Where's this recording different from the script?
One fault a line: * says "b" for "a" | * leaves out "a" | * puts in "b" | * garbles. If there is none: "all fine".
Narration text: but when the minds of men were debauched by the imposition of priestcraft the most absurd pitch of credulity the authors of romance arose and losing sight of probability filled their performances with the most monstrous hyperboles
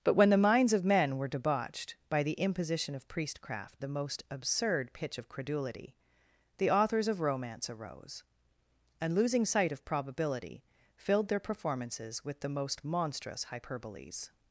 all fine